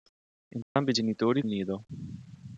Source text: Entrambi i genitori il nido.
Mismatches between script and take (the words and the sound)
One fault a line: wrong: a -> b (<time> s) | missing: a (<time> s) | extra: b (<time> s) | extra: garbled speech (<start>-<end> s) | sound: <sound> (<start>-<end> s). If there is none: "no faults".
sound: dropout (0.6-0.8 s)